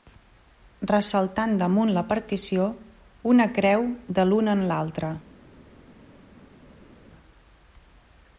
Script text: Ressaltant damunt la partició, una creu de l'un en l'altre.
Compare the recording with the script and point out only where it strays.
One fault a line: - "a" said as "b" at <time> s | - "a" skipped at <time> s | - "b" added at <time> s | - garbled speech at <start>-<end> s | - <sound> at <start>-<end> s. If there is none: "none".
none